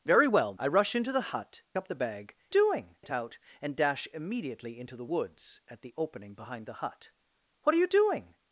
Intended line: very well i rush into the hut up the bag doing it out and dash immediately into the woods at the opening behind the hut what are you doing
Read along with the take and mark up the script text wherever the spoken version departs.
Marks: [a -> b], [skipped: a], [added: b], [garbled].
very well i rush into the hut up the bag doing it out and dash immediately into the woods at the opening behind the hut what are you doing